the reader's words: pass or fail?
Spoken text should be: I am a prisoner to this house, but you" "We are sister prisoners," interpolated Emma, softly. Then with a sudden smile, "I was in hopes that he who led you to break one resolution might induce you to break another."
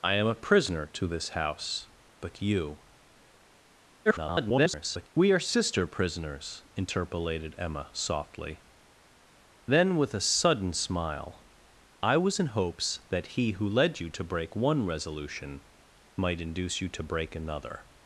fail